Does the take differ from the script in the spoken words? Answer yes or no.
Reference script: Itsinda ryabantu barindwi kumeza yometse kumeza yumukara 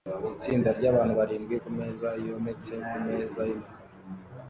no